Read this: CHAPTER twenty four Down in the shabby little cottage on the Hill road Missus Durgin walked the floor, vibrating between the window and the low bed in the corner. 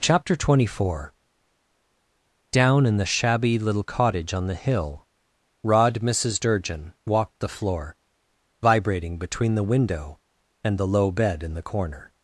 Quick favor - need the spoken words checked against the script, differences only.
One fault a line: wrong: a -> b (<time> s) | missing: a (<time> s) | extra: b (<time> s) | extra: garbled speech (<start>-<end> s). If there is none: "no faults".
wrong: road -> rod (5.6 s)